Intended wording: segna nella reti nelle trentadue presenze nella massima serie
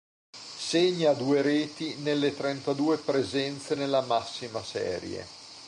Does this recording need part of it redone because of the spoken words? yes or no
yes